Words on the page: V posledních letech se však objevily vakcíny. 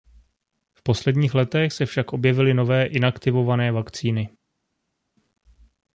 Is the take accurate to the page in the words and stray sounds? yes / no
no